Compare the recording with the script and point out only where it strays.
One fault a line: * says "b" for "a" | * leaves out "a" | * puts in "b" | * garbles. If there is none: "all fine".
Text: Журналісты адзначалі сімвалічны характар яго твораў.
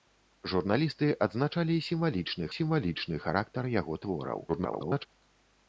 * puts in "сімвалічны"
* garbles